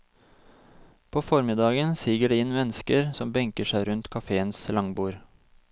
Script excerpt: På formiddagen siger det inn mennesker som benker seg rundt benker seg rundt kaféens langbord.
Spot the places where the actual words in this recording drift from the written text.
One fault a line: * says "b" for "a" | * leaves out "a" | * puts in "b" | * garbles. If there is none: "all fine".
* leaves out "benker seg rundt"